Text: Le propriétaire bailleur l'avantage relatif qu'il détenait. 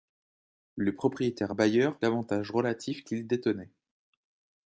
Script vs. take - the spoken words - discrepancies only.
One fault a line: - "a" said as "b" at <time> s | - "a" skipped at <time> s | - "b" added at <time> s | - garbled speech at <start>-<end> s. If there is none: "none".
none